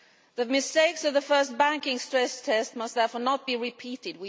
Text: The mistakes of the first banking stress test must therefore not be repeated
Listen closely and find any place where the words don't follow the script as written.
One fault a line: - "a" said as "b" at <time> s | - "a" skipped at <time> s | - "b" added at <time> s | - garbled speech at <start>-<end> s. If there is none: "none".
none